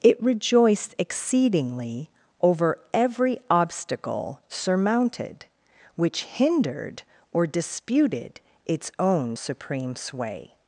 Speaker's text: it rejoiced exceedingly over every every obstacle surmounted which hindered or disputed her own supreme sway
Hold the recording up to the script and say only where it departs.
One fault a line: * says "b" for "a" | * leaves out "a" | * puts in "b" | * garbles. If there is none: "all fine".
* leaves out "every"
* says "its" for "her"